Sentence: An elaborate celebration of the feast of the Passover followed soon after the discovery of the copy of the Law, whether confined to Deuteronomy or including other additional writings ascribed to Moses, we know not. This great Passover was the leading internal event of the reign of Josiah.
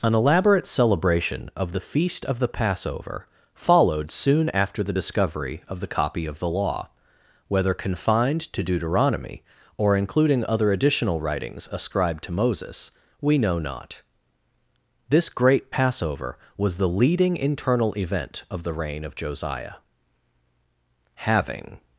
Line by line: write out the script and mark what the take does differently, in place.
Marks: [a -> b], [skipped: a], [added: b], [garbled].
An elaborate celebration of the feast of the Passover followed soon after the discovery of the copy of the Law, whether confined to Deuteronomy or including other additional writings ascribed to Moses, we know not. This great Passover was the leading internal event of the reign of Josiah. [added: Having]